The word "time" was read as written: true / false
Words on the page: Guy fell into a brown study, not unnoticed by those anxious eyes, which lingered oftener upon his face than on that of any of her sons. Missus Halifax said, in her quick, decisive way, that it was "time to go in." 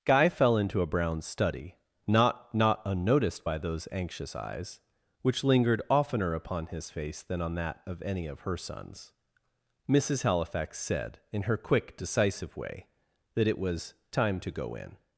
true